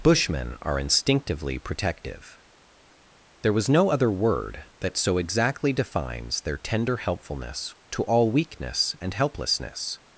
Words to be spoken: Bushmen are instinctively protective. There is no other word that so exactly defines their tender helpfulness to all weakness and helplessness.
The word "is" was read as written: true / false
false